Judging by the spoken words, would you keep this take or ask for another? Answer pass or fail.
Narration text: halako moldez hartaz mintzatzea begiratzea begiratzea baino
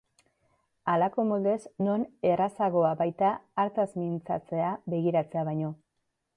fail